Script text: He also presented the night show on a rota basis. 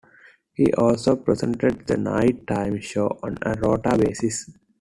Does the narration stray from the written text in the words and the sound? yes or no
yes